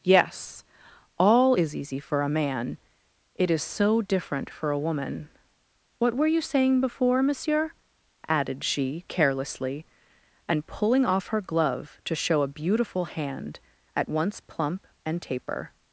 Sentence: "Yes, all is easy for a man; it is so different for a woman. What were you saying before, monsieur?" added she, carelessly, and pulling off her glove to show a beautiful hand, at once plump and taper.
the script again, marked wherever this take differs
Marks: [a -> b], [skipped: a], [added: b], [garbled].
"Yes, all is easy for a man; it is so different for a woman. What were you saying before, monsieur?" added she, carelessly, and pulling off her glove to show a beautiful hand, at once plump and taper.